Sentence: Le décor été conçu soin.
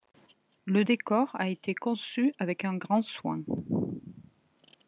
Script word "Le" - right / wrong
right